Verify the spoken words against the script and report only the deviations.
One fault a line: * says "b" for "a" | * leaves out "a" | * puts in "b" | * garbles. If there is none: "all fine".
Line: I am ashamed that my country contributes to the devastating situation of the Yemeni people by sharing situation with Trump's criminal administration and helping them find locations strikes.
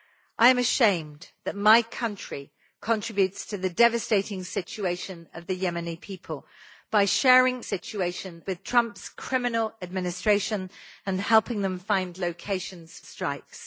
all fine